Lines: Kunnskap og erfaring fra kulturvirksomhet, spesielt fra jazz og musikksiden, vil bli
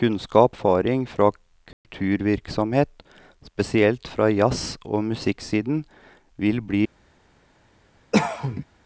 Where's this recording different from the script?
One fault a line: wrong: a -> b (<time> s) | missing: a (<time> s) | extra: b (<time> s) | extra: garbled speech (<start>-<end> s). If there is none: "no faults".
missing: og (0.6 s)